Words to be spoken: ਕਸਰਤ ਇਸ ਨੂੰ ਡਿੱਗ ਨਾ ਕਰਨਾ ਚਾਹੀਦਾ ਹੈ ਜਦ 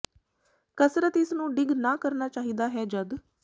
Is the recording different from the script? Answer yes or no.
no